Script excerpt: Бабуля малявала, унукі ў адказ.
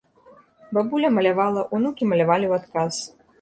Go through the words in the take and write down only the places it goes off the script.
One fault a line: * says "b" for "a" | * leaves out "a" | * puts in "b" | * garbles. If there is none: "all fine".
* puts in "малявалі"